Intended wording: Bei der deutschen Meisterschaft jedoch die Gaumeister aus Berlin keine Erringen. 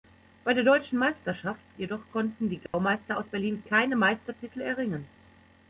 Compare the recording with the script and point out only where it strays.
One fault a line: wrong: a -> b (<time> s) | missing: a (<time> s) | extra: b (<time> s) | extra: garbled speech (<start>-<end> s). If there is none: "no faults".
extra: konnten (2.1 s)
extra: Meistertitel (4.0 s)